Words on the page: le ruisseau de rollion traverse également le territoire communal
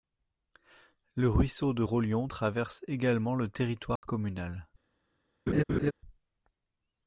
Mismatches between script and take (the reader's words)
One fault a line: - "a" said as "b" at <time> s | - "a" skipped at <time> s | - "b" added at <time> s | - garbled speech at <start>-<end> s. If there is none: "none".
none